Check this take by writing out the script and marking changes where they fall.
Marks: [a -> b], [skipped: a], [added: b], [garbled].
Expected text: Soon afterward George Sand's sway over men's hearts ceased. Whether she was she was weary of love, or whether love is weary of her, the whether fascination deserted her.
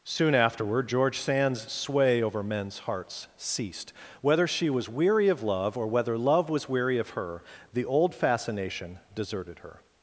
Soon afterward George Sand's sway over men's hearts ceased. Whether she was [skipped: she was] weary of love, or whether love [is -> was] weary of her, the [whether -> old] fascination deserted her.